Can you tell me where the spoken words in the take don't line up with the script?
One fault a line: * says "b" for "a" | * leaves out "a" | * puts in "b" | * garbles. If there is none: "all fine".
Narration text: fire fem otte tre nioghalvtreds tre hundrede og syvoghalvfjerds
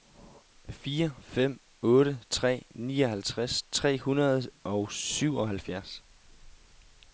all fine